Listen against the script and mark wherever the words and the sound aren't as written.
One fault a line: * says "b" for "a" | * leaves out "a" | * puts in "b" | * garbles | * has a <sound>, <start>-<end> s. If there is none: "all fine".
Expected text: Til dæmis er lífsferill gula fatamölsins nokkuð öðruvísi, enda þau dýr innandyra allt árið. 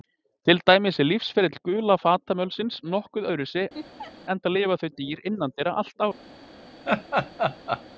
* has a laugh, 3.7-4.1 s
* puts in "lifa"
* has a laugh, 6.8-7.8 s